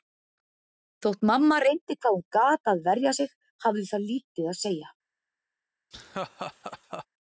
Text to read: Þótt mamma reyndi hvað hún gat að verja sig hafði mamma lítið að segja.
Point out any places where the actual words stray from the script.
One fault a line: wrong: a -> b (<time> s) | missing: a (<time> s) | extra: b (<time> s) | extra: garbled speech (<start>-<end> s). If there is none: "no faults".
wrong: mamma -> það (3.9 s)